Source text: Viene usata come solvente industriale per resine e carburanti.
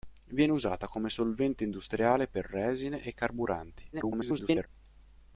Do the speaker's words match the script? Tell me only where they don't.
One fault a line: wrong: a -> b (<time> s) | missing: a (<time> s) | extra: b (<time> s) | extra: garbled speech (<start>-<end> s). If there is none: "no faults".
extra: garbled speech (3.9-4.7 s)